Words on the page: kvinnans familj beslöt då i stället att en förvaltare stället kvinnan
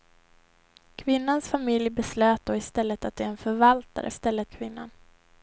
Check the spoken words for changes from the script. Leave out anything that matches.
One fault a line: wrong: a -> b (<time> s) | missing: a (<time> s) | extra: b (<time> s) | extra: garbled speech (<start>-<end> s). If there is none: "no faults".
no faults